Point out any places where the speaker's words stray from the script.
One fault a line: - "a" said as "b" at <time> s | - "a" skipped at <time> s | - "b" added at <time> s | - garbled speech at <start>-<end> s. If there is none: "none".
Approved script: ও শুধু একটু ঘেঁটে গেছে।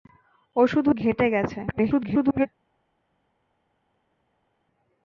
- "একটু" skipped at 0.9 s
- garbled speech at 1.7-2.5 s